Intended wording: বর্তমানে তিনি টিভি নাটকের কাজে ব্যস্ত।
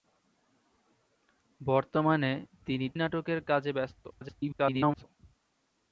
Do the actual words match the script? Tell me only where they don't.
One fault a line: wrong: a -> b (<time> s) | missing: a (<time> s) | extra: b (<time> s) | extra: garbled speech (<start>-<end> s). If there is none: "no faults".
missing: টিভি (2.9 s)
extra: garbled speech (4.1-5.0 s)